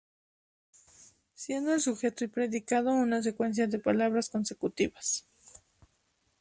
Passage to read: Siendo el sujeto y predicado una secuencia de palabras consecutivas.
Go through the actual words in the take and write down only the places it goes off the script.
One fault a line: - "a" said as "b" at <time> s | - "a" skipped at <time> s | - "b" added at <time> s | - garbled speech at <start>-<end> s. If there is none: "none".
none